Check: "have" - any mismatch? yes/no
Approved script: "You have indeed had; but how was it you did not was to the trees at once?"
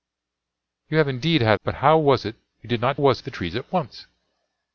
no